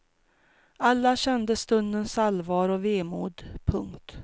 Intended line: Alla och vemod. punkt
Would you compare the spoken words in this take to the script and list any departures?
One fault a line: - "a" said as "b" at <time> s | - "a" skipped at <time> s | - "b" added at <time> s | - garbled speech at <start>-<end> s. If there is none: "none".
- "kände stundens allvar" added at 1.1 s